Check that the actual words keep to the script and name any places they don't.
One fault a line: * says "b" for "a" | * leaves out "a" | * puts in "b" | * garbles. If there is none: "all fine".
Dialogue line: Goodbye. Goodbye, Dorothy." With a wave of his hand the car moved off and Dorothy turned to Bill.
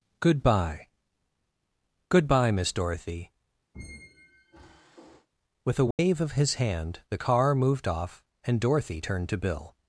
* puts in "Miss"